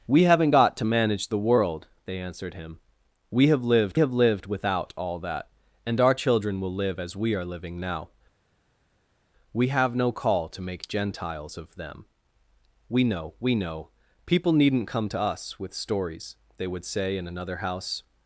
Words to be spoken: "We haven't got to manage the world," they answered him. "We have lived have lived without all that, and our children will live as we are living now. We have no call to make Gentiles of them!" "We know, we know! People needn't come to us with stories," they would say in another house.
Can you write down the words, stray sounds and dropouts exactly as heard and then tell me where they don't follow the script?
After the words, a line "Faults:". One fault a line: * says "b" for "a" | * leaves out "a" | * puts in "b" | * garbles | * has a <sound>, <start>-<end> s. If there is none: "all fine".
"We haven't got to manage the world," they answered him. "We have lived have lived without all that, and our children will live as we are living now. We have no call to make Gentiles of them!" "We know, we know! People needn't come to us with stories," they would say in another house.
Faults:
all fine